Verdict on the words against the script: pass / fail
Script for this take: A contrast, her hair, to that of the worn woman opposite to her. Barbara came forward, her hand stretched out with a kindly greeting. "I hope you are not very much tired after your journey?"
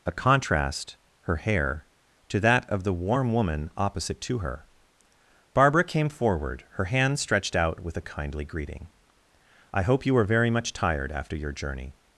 fail